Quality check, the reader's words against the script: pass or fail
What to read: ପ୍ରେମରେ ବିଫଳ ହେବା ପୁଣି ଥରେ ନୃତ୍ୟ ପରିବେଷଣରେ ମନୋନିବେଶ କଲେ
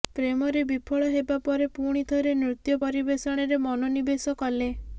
fail